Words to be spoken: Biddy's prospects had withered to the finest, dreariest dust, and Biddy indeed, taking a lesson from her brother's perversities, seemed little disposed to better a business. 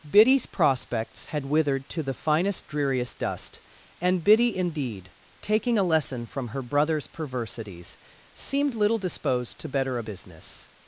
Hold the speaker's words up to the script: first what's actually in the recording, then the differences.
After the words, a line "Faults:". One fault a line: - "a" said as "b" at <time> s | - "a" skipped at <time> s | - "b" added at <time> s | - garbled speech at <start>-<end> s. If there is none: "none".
Biddy's prospects had withered to the finest, dreariest dust, and Biddy indeed, taking a lesson from her brother's perversities, seemed little disposed to better a business.
Faults:
none